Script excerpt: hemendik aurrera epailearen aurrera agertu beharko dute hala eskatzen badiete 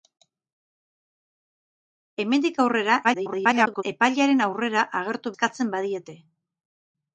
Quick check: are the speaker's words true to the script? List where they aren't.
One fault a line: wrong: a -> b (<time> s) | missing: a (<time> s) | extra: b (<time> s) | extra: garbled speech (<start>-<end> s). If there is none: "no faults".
extra: garbled speech (3.0-3.8 s)
missing: beharko dute hala (5.4 s)